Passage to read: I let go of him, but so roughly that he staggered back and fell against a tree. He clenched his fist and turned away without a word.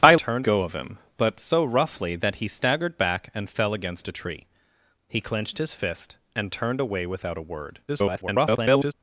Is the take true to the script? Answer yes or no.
no